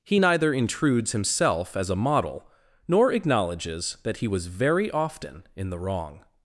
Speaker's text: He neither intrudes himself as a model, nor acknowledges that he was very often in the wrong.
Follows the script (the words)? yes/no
yes